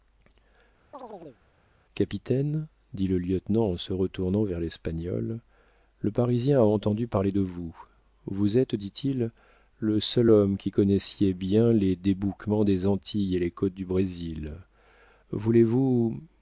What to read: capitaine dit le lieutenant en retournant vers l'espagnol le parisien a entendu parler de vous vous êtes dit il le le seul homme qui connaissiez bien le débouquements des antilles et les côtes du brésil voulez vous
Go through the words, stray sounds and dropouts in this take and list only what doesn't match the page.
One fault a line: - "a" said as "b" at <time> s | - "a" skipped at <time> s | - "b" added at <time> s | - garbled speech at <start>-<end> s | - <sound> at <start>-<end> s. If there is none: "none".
- chirp at 0.9-1.4 s
- "se" added at 3.8 s
- "le" skipped at 10.0 s
- "le" said as "les" at 11.7 s